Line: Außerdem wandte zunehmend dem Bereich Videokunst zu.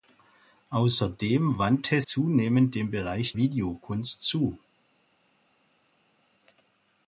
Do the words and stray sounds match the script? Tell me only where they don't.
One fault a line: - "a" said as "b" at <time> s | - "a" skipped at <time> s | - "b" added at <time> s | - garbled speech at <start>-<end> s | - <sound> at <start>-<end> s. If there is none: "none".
none